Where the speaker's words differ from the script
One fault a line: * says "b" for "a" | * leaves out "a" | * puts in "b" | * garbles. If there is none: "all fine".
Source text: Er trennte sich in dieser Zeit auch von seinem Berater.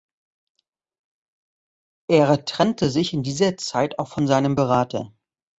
all fine